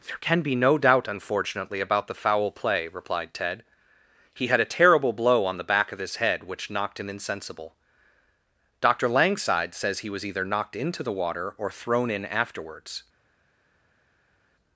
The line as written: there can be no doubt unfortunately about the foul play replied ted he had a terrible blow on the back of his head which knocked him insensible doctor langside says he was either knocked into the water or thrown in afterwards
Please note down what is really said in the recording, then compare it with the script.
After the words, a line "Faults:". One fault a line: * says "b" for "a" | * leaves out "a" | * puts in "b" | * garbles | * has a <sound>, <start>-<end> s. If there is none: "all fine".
there can be no doubt unfortunately about the foul play replied ted he had a terrible blow on the back of his head which knocked him insensible doctor langside says he was either knocked into the water or thrown in afterwards
Faults:
all fine